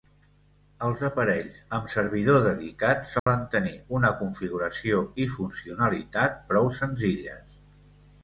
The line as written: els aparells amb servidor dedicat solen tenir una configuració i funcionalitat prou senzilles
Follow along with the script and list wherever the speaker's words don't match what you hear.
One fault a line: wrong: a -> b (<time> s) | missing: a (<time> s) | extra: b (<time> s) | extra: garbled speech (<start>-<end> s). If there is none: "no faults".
no faults